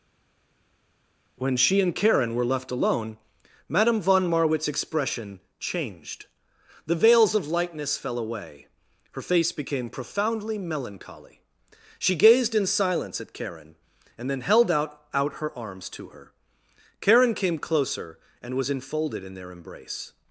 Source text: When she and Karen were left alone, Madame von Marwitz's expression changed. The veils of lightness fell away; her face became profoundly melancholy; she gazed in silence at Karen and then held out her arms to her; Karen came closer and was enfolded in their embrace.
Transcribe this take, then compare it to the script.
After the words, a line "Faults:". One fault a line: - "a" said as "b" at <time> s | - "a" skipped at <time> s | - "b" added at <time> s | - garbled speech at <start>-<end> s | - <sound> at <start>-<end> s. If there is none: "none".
When she and Karen were left alone, Madame von Marwitz's expression changed. The veils of lightness fell away; her face became profoundly melancholy; she gazed in silence at Karen and then held out out her arms to her; Karen came closer and was enfolded in their embrace.
Faults:
- "out" added at 15.1 s